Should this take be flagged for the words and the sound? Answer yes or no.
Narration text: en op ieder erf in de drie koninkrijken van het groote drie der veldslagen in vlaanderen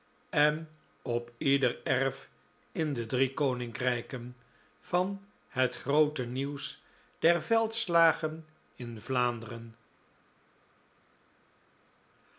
yes